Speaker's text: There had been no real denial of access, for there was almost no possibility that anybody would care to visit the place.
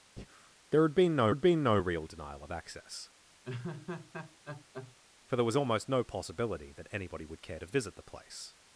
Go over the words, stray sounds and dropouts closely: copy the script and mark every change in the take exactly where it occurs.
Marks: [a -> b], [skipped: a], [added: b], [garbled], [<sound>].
[breath] There had been no [added: had been no] real denial of access, [laugh] for there was almost no possibility that anybody would care to visit the place.